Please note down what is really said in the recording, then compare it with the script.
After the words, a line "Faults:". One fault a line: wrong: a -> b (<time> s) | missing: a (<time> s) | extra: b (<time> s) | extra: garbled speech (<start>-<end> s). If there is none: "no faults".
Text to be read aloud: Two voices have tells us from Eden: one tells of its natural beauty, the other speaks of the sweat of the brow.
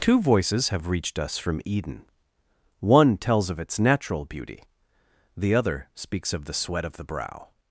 Two voices have reached us from Eden: one tells of its natural beauty, the other speaks of the sweat of the brow.
Faults:
wrong: tells -> reached (0.9 s)